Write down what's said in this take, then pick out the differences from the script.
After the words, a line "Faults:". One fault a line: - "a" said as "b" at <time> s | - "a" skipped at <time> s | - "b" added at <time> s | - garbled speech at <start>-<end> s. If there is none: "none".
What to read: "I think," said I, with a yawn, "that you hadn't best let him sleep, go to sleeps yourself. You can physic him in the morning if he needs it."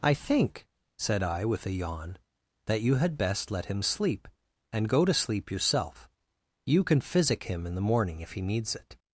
"I think," said I, with a yawn, "that you had best let him sleep, and go to sleep yourself. You can physic him in the morning if he needs it."
Faults:
- "hadn't" said as "had" at 3.0 s
- "and" added at 4.7 s
- "sleeps" said as "sleep" at 5.1 s